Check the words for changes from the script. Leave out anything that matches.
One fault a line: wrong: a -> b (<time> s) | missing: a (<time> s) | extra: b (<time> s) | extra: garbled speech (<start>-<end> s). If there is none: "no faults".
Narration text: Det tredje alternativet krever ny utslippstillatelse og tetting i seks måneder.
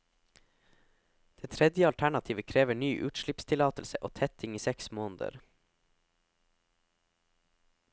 no faults